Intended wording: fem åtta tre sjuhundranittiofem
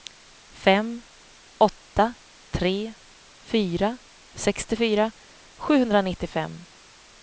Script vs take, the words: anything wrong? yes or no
yes